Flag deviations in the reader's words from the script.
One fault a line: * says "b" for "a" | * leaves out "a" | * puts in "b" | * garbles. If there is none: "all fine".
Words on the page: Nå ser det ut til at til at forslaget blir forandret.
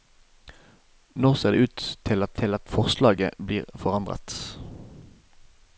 all fine